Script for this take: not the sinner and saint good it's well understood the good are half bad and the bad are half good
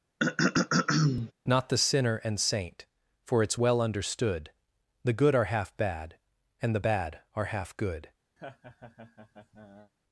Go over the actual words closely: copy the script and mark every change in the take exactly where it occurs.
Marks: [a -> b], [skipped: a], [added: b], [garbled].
not the sinner and saint [good -> for] it's well understood the good are half bad and the bad are half good